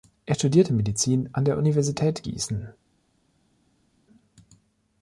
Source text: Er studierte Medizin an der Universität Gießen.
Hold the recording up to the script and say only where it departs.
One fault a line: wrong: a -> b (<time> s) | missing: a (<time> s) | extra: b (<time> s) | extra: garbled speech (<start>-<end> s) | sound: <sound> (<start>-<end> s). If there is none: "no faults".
no faults